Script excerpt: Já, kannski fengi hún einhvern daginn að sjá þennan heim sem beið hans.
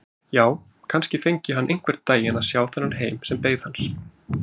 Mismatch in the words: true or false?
true